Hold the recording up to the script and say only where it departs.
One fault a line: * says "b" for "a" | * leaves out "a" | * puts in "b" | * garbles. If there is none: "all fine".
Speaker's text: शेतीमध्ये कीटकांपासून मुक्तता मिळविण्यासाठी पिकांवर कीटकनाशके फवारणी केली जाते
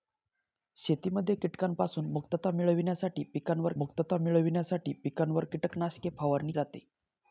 * puts in "मुक्तता मिळविण्यासाठी पिकांवर"
* leaves out "केली"